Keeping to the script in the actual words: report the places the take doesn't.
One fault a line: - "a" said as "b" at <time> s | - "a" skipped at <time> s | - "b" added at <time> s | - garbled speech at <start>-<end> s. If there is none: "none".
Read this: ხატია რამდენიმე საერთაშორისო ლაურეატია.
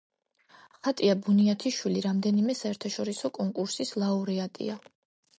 - "ბუნიათიშვილი" added at 1.2 s
- "კონკურსის" added at 3.4 s